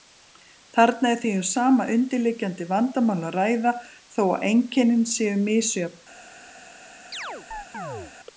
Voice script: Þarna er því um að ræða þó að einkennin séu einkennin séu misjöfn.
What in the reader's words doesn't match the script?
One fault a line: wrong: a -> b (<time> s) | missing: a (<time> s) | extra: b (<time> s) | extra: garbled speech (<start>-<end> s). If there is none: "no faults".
extra: sama undirliggjandi vandamál (1.5 s)
missing: einkennin séu (5.4 s)